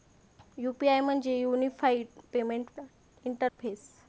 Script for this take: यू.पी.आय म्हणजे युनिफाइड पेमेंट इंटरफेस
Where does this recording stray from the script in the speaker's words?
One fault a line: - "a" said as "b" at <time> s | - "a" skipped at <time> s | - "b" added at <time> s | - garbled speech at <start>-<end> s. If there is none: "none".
none